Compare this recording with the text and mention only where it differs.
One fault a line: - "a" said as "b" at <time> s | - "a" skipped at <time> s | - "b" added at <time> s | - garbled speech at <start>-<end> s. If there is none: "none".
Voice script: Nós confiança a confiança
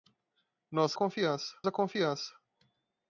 none